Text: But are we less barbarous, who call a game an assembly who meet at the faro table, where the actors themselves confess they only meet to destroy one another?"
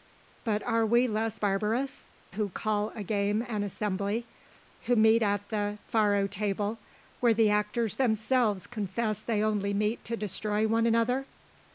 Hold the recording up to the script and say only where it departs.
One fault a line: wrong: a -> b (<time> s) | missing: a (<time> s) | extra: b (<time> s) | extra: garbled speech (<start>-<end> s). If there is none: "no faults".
no faults